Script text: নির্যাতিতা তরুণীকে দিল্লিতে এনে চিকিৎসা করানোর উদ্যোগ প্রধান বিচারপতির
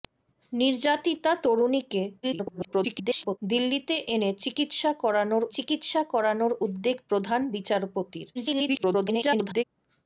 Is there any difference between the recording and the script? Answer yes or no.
yes